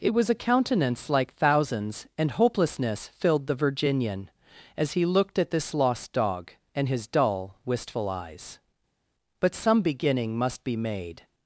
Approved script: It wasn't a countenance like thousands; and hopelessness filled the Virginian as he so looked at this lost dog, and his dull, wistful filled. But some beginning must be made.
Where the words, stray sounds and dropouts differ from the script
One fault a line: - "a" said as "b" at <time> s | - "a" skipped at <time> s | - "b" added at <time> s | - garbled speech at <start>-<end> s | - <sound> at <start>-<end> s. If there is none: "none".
- "wasn't" said as "was" at 0.1 s
- "so" skipped at 5.0 s
- "filled" said as "eyes" at 8.1 s